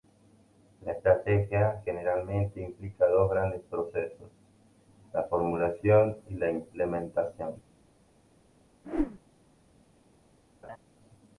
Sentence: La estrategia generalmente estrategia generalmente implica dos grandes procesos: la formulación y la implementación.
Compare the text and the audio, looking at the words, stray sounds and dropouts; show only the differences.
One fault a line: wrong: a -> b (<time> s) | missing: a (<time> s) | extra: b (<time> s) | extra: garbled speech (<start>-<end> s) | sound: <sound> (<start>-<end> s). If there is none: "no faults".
missing: estrategia generalmente (2.6 s)
sound: whoosh (8.8-9.2 s)
sound: laugh (10.6-10.8 s)